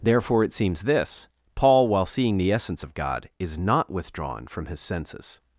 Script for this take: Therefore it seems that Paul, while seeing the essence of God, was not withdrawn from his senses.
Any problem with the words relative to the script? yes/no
yes